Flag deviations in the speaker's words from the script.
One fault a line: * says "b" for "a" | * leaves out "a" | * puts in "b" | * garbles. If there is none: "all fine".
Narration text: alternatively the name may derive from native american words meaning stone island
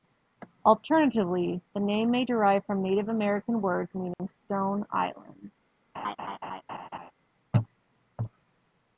all fine